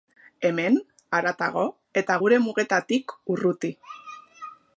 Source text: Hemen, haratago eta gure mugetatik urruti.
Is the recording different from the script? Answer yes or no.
no